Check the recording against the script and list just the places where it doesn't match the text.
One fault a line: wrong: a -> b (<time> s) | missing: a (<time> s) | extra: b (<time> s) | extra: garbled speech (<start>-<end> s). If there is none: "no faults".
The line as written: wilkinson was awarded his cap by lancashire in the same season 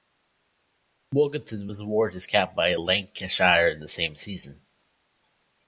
no faults